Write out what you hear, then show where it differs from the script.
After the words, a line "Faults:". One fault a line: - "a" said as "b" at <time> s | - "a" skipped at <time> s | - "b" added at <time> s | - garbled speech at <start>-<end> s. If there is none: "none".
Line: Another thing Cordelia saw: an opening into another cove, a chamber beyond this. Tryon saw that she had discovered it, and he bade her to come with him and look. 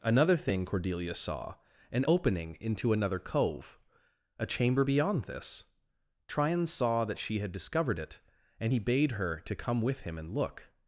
Another thing Cordelia saw: an opening into another cove, a chamber beyond this. Tryon saw that she had discovered it, and he bade her to come with him and look.
Faults:
none